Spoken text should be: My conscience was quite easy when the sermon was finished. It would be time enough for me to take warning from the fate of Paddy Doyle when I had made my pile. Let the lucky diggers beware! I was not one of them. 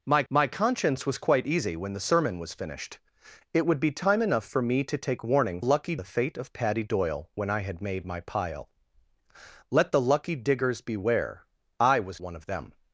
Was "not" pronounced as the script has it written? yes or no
no